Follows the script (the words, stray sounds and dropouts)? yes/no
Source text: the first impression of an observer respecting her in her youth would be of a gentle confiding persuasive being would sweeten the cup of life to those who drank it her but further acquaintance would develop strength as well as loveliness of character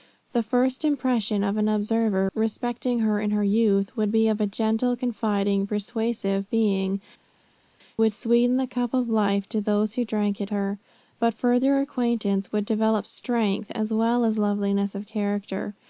yes